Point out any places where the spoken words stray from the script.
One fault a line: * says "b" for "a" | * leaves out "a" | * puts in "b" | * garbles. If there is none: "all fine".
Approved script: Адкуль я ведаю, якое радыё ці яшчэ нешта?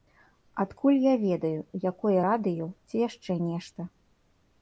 all fine